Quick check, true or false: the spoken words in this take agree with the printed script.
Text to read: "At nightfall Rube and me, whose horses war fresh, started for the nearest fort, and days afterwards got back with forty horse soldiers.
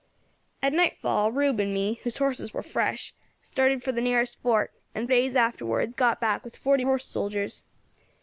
true